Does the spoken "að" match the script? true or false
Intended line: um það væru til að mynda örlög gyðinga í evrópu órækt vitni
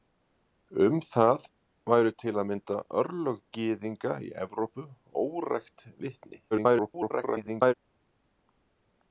true